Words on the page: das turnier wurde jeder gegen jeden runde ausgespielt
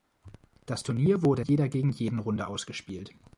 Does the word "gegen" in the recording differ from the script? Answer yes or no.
no